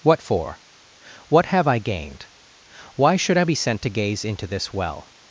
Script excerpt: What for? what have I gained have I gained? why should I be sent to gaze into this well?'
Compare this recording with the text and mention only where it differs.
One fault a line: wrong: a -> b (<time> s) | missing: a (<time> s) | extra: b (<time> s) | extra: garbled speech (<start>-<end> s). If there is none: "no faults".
missing: have I gained (2.3 s)